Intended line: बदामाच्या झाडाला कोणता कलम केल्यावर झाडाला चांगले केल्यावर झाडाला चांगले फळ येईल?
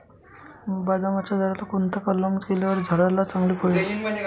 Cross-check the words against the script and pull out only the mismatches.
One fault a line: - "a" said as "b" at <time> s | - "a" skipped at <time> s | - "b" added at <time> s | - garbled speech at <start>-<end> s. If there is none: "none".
- "केल्यावर झाडाला चांगले" skipped at 3.5 s